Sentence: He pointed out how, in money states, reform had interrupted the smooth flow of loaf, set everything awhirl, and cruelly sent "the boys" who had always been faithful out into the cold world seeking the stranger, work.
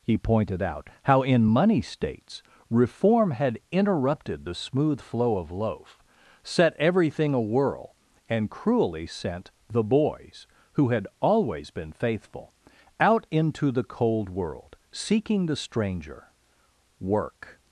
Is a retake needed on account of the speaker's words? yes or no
no